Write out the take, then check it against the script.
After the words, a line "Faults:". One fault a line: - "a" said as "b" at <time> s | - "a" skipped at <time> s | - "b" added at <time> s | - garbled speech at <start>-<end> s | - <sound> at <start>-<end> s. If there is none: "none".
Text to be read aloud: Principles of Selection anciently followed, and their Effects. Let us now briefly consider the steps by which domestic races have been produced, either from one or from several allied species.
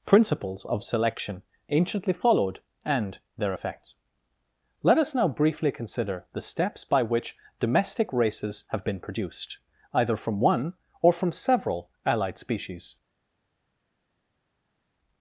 Principles of Selection anciently followed, and their Effects. Let us now briefly consider the steps by which domestic races have been produced, either from one or from several allied species.
Faults:
none